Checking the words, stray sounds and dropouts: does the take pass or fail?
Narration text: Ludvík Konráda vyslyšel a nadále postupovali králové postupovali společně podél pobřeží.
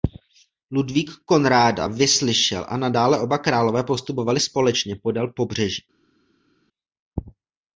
fail